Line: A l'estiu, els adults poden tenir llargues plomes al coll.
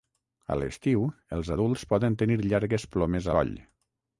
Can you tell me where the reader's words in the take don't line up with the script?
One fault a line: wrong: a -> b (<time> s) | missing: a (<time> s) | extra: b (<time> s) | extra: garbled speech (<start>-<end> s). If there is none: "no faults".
missing: al (3.3 s)